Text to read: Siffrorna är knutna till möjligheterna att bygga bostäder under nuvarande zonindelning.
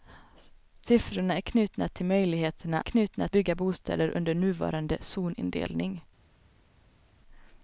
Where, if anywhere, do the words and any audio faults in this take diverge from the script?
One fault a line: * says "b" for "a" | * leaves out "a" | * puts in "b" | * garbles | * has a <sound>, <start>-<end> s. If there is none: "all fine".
* says "knutna" for "att"